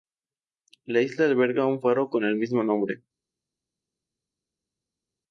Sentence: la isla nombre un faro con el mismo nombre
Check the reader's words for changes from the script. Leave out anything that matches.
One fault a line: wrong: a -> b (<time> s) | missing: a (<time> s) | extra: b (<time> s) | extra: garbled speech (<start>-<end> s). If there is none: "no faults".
wrong: nombre -> alberga (1.2 s)